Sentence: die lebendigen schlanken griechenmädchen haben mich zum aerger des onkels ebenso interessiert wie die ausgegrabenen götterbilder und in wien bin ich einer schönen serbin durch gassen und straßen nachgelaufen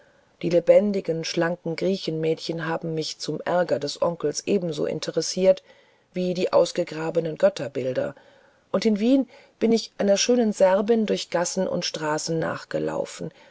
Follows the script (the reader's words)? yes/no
yes